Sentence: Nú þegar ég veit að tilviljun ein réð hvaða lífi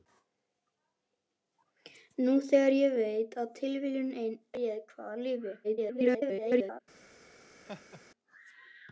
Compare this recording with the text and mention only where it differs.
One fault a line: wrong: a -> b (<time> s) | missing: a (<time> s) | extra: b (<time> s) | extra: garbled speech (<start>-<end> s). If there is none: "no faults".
extra: garbled speech (5.6-6.8 s)